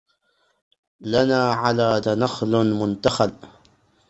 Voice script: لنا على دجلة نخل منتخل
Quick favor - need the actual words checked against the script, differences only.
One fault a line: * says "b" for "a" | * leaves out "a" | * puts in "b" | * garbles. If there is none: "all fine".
* leaves out "دجلة"